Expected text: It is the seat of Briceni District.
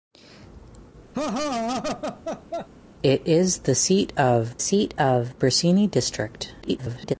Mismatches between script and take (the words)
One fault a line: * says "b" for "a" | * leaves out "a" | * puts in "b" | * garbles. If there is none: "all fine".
* puts in "seat of"
* garbles